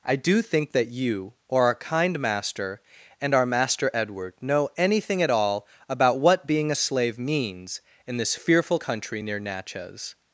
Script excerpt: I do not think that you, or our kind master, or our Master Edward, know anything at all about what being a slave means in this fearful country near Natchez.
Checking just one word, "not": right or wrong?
wrong